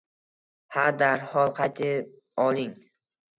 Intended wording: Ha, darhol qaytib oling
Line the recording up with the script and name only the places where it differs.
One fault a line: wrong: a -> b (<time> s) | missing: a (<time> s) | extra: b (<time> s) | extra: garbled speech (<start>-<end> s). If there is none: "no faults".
no faults